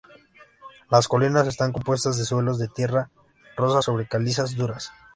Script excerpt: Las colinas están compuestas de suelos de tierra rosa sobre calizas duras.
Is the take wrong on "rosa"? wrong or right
right